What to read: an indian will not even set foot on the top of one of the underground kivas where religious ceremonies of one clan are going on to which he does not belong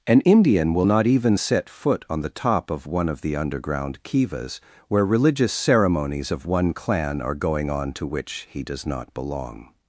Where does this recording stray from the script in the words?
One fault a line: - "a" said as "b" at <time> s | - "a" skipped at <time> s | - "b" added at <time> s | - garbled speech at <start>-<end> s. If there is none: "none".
none